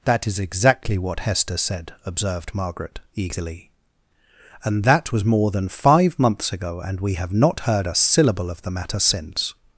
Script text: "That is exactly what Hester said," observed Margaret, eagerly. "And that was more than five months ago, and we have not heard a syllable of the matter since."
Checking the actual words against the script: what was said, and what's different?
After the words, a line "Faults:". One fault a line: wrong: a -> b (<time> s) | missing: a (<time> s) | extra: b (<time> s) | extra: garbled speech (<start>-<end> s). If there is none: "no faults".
"That is exactly what Hester said," observed Margaret, eagerly. "And that was more than five months ago, and we have not heard a syllable of the matter since."
Faults:
no faults